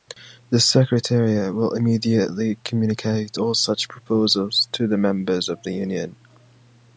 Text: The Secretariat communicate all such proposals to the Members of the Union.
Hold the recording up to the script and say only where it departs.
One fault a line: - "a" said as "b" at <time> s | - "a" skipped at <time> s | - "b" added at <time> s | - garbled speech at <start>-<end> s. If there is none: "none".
- "will immediately" added at 1.5 s